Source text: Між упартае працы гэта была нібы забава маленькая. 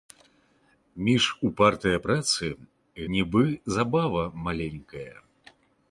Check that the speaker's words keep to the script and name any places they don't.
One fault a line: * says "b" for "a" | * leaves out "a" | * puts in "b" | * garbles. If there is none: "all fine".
* leaves out "гэта была"